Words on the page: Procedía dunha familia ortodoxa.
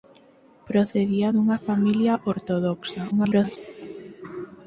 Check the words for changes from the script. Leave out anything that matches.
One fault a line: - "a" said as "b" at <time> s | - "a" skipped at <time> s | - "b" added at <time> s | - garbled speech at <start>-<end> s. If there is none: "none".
- garbled speech at 3.1-3.6 s